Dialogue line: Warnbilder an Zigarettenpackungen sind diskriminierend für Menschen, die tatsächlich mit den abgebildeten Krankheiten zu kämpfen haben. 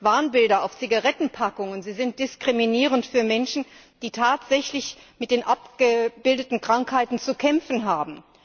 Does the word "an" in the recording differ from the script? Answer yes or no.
yes